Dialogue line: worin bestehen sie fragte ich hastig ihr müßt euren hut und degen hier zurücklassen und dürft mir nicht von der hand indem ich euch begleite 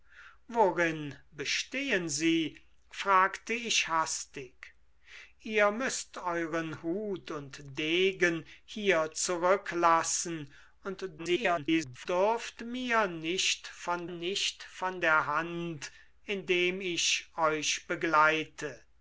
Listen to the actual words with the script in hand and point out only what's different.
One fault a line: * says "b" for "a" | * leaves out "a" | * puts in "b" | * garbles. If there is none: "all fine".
* garbles
* puts in "nicht von"